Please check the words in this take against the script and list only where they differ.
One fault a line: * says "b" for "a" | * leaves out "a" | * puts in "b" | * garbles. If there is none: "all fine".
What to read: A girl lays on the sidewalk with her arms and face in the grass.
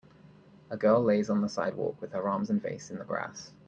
all fine